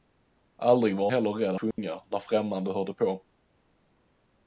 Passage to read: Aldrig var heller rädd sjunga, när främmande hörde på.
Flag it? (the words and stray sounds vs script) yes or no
yes